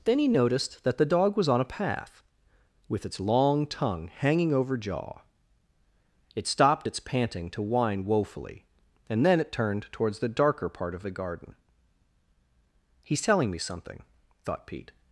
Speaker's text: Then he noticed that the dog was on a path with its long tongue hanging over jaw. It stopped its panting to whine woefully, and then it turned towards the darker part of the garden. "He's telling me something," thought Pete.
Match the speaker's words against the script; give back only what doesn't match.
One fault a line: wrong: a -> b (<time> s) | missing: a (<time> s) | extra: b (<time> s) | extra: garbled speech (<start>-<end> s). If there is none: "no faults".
no faults